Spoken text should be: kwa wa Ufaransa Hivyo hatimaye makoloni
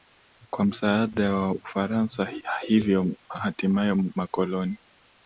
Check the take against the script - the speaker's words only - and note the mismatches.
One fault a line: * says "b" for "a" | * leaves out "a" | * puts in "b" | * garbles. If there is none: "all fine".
* puts in "msaada"